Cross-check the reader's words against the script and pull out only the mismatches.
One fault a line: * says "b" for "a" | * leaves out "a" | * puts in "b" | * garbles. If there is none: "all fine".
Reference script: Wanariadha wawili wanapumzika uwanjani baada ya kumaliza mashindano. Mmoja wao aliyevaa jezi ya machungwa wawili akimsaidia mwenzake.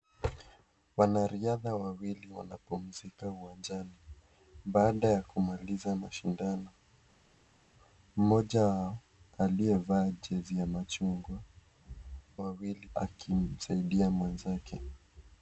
all fine